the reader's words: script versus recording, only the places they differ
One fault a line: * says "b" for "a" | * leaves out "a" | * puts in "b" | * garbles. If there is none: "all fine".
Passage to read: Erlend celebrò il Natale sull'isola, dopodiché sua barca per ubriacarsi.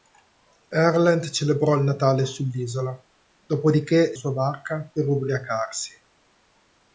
all fine